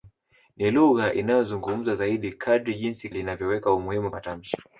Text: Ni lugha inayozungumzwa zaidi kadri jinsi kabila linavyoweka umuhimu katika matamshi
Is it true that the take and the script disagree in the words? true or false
true